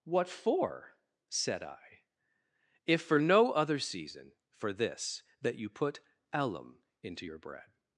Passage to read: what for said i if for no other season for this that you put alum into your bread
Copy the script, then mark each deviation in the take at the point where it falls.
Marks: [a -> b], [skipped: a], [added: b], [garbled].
what for said i if for no other season for this that you put alum into your bread